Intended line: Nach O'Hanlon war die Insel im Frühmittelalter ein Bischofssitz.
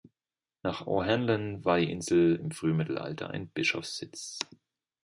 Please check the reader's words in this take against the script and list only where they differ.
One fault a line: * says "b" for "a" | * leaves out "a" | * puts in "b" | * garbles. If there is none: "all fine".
all fine